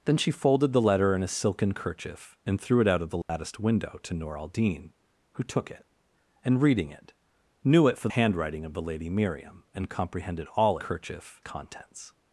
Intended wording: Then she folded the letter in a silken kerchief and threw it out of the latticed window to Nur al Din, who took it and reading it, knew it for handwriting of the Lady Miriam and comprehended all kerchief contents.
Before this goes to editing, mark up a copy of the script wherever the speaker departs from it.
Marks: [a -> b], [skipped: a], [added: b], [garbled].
Then she folded the letter in a silken kerchief and threw it out of the latticed window to Nur al Din, who took it and reading it, knew it for handwriting of the Lady Miriam and comprehended all kerchief contents.